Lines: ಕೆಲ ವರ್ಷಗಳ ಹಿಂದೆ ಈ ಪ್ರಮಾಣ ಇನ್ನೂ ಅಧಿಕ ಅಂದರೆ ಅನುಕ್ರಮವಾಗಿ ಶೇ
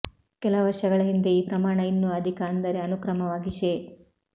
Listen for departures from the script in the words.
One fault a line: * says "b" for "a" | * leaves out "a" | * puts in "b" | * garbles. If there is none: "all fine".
all fine